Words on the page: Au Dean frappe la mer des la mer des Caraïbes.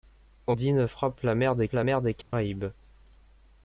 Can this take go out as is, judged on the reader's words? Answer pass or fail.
pass